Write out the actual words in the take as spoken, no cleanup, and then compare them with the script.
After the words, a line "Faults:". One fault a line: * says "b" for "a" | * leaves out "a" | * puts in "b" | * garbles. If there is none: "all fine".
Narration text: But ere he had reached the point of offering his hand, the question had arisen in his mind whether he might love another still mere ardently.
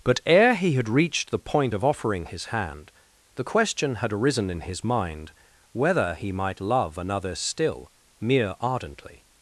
But ere he had reached the point of offering his hand, the question had arisen in his mind whether he might love another still mere ardently.
Faults:
all fine